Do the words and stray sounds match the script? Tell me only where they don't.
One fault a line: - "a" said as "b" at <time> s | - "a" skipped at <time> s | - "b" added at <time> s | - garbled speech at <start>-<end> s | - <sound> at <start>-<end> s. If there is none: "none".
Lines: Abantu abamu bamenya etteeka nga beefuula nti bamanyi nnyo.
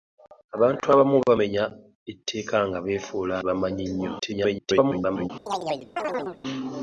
- "nti" skipped at 3.4 s
- garbled speech at 4.2-5.3 s
- chirp at 5.5-6.4 s